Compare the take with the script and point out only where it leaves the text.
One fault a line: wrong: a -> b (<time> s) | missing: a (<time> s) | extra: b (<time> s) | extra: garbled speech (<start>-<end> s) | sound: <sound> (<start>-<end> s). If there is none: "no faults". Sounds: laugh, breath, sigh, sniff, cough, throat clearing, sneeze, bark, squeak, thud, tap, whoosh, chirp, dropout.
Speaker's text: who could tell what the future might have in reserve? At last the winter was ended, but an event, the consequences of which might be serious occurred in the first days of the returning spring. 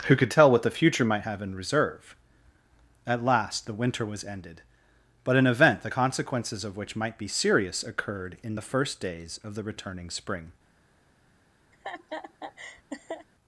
sound: laugh (11.7-13.3 s)